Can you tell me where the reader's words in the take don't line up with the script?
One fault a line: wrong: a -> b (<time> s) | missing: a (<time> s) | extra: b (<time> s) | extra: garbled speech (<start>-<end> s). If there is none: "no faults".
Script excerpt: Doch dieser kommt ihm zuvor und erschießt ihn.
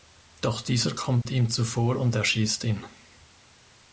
no faults